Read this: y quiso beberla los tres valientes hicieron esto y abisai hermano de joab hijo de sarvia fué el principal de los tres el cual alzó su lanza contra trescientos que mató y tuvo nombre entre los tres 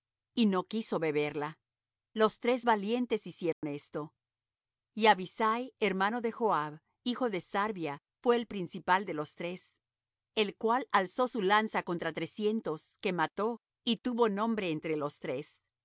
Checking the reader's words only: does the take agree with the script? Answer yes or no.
no